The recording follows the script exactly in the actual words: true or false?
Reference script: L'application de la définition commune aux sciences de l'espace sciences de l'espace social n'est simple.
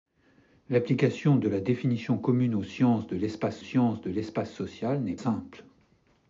true